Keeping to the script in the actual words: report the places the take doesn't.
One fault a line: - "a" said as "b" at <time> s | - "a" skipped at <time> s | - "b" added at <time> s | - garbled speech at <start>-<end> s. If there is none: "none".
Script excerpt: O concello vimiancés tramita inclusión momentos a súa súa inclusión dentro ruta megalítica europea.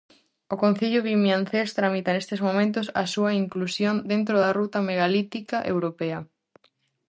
- "inclusión" said as "nestes" at 2.1 s
- "súa" skipped at 3.3 s
- "da" added at 4.4 s